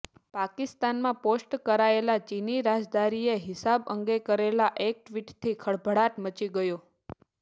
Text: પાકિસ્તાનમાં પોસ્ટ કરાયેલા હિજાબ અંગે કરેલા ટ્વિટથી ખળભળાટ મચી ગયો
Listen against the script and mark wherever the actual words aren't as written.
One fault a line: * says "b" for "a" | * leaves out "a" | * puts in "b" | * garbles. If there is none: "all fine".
* puts in "ચીની રાજદ્વારીએ"
* puts in "એક"